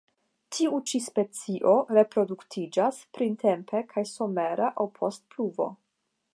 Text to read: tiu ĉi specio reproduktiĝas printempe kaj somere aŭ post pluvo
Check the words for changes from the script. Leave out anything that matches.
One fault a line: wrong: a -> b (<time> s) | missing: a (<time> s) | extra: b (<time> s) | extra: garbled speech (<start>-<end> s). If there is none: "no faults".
no faults